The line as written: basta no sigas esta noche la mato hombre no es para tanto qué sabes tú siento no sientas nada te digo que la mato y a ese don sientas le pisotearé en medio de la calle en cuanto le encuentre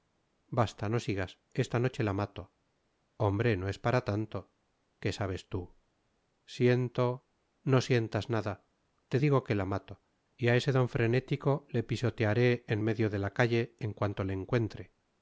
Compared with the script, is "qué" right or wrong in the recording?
right